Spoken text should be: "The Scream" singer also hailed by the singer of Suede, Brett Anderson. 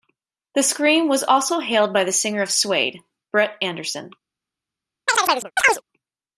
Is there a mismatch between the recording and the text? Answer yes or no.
yes